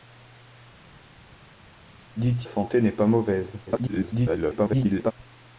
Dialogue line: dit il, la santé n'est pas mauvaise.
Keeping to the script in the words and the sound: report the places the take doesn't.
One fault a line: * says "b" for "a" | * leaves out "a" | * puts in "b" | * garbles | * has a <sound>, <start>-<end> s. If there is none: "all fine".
* leaves out "il la"
* garbles